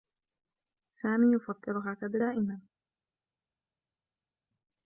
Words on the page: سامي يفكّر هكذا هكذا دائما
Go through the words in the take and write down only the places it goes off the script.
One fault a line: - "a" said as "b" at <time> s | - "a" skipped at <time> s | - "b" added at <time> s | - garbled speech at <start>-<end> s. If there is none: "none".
- "هكذا" skipped at 2.2 s